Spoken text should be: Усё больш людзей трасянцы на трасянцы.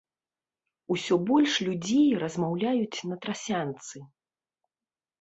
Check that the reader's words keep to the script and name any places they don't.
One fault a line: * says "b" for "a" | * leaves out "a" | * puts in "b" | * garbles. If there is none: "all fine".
* says "размаўляюць" for "трасянцы"